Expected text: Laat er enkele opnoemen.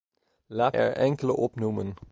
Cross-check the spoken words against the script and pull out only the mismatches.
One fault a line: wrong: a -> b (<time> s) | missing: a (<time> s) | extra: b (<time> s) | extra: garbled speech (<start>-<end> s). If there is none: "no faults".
no faults